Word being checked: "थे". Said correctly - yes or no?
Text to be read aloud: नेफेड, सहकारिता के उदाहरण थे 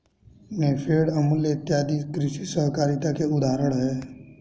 no